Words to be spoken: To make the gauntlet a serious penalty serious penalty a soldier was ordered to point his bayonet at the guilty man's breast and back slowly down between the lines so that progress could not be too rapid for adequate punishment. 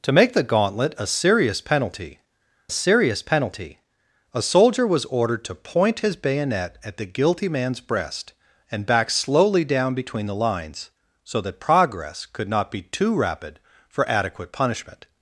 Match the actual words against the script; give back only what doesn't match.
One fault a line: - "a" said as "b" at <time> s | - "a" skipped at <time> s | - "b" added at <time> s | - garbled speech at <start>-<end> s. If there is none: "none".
none